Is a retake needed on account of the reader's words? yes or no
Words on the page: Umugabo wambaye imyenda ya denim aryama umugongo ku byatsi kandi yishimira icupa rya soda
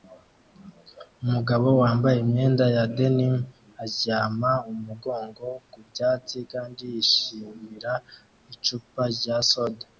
no